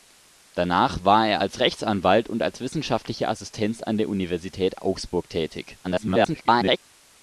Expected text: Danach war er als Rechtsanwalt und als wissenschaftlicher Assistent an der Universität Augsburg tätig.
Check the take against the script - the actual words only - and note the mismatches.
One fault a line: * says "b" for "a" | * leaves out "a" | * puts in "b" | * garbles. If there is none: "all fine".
* garbles